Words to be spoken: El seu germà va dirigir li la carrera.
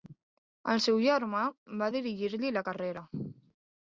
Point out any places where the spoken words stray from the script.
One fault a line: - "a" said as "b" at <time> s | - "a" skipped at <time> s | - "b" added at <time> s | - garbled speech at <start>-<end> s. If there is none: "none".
none